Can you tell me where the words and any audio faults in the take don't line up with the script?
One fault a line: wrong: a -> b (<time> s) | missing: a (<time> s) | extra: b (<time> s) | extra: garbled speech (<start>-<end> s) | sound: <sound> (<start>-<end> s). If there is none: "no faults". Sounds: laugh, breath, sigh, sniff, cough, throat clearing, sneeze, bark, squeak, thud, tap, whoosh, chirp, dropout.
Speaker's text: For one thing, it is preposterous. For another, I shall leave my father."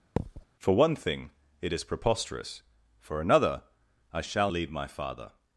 sound: thud (0.2-0.5 s)